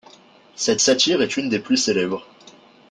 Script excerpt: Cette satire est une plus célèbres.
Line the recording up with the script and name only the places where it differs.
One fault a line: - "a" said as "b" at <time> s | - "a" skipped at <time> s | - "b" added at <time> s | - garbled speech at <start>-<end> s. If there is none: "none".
- "des" added at 1.5 s